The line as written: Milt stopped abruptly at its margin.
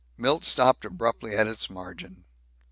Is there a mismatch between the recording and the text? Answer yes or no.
no